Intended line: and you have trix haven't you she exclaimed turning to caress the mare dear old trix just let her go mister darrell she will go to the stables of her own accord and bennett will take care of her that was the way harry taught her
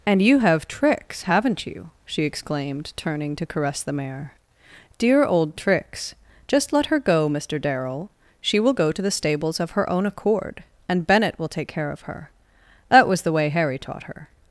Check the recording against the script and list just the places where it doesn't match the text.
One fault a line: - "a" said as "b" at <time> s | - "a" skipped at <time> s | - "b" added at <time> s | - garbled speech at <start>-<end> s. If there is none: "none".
none